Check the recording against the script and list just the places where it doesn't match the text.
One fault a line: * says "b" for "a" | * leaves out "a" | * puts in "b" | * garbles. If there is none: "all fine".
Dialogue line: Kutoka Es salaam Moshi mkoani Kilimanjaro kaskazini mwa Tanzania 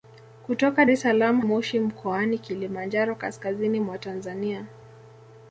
all fine